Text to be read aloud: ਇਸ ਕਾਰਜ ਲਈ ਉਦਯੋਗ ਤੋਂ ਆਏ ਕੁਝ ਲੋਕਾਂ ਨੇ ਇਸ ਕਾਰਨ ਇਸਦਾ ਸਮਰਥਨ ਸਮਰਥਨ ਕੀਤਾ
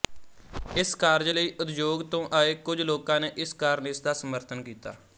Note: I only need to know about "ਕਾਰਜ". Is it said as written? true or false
true